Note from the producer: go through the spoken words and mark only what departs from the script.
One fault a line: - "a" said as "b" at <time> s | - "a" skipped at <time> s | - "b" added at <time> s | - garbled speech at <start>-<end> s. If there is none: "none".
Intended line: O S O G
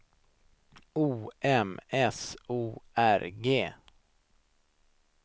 - "M" added at 1.4 s
- "R" added at 3.0 s